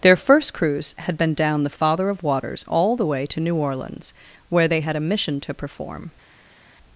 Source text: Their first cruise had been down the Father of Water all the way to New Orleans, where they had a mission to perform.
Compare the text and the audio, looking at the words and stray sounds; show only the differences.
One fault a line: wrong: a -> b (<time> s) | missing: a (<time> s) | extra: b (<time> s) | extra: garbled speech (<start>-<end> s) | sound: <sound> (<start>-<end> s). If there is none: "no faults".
wrong: Water -> Waters (2.2 s)